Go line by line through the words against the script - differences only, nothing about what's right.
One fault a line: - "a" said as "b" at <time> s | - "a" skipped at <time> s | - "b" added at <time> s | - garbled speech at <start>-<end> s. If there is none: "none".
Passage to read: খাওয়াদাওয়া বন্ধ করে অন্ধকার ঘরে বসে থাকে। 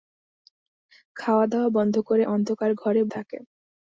- "বসে" skipped at 3.0 s